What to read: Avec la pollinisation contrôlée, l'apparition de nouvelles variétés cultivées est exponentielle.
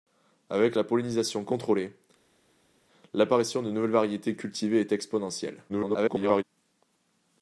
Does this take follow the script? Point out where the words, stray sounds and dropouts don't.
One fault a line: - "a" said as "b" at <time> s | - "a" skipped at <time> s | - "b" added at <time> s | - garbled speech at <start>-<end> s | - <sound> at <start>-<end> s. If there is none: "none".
- garbled speech at 5.7-6.4 s